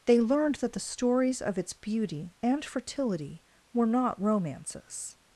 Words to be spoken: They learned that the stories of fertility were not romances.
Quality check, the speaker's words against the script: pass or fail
fail